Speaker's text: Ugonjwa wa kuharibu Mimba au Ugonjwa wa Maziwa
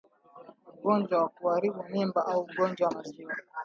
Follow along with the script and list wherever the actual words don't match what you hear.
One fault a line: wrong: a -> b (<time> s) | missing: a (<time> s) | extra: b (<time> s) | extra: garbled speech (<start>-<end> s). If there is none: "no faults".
no faults